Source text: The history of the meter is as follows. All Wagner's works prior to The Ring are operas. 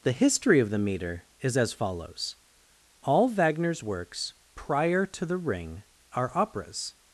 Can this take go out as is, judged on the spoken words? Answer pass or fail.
pass